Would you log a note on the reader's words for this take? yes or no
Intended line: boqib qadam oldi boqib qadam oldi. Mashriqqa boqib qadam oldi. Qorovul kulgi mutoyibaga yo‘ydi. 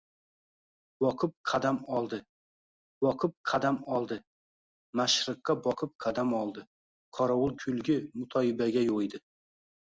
no